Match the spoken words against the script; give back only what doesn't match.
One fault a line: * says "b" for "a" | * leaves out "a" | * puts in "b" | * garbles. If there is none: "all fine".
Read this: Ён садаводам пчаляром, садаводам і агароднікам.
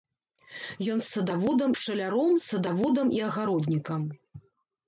all fine